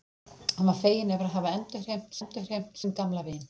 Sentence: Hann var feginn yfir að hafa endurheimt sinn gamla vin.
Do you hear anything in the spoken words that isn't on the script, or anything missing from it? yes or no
yes